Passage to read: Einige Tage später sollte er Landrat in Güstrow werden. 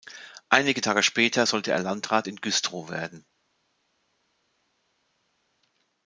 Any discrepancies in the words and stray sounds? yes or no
no